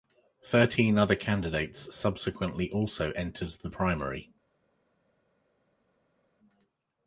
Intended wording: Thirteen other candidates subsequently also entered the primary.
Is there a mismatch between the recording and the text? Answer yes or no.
no